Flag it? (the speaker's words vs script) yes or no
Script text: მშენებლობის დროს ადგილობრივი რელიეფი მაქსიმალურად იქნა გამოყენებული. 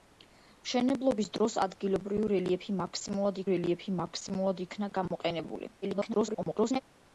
yes